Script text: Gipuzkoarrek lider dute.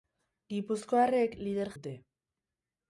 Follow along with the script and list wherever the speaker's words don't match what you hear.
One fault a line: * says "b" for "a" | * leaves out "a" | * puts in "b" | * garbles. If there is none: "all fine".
all fine